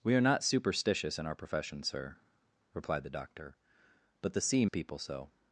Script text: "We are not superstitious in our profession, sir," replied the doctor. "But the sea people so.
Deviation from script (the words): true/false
false